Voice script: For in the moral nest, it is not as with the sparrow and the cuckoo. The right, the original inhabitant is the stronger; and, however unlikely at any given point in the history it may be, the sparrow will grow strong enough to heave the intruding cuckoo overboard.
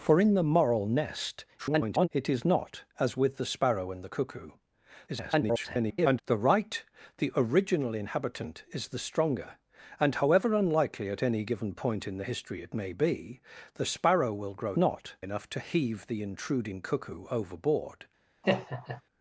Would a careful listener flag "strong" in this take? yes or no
yes